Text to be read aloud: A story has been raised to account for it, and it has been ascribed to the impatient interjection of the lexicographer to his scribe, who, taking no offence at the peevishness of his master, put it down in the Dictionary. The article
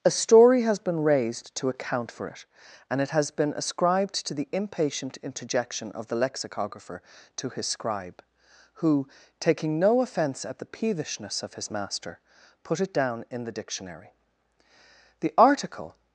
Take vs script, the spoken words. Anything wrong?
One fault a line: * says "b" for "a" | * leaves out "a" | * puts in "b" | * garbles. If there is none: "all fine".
all fine